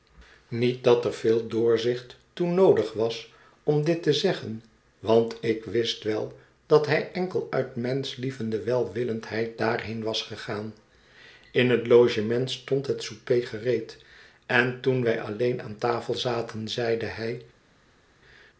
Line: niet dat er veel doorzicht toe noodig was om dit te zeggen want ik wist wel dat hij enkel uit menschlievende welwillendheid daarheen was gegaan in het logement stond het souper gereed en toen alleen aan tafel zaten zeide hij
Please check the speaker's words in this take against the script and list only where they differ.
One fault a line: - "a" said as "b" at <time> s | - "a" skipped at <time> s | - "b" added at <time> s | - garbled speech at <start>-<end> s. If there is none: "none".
- "wij" added at 15.0 s